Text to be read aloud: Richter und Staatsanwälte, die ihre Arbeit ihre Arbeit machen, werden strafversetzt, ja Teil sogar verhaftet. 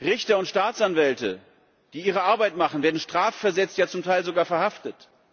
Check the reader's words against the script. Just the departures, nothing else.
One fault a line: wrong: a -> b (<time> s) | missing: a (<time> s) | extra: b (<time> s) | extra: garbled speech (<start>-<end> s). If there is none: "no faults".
missing: ihre Arbeit (2.6 s)
extra: zum (3.9 s)